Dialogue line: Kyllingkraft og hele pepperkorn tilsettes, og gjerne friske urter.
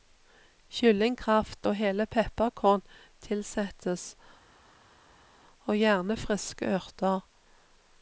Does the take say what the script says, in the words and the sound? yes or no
yes